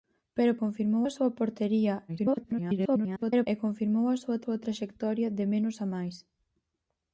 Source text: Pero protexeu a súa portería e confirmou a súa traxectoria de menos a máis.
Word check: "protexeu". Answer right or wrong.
wrong